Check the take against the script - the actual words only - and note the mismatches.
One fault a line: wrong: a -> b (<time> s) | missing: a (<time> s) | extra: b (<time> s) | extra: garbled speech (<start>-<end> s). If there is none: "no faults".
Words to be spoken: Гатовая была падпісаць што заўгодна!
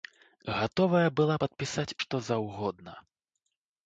no faults